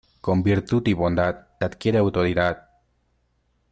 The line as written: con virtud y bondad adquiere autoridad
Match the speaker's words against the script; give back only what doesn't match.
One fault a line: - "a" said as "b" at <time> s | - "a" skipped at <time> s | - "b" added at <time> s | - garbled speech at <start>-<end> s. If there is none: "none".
none